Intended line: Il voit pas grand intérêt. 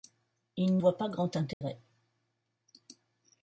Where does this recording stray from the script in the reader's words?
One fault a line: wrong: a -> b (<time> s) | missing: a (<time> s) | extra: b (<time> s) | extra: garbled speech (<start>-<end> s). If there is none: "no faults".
no faults